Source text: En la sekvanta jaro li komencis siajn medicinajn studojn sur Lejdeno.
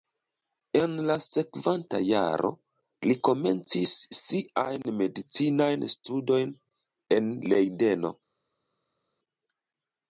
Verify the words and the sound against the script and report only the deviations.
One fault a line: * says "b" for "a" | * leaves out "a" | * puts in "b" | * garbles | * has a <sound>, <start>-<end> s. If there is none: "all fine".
* says "en" for "sur"